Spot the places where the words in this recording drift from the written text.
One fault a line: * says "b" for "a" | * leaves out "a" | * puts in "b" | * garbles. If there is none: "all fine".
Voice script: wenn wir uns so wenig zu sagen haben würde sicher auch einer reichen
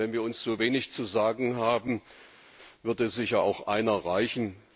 all fine